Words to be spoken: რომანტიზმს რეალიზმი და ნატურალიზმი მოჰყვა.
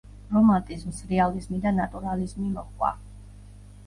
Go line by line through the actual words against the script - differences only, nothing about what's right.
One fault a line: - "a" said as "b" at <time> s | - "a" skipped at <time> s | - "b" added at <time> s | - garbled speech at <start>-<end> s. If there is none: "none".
none